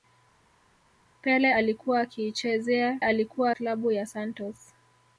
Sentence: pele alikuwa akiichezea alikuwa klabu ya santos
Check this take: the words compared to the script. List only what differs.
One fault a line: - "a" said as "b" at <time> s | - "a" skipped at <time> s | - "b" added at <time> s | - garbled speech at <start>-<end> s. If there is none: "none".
none